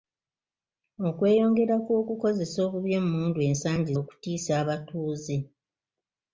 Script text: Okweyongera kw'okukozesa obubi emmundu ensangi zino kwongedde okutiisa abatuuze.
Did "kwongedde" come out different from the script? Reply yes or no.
yes